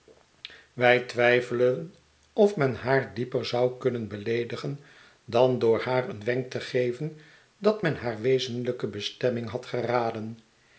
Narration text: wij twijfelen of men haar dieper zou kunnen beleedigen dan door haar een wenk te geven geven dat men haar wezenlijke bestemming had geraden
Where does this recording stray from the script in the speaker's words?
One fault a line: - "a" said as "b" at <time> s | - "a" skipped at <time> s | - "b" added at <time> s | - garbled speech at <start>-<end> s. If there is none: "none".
- "geven" skipped at 7.2 s